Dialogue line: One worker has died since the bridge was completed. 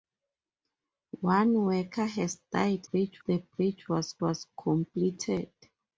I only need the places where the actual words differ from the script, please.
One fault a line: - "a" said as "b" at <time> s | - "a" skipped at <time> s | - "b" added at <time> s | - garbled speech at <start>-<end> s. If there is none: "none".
- "since" said as "bridge" at 2.9 s
- "was" added at 4.2 s